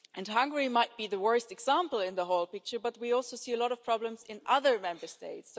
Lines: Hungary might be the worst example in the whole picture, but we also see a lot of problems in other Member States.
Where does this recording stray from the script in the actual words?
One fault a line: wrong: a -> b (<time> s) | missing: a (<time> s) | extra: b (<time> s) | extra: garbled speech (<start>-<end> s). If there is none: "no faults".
no faults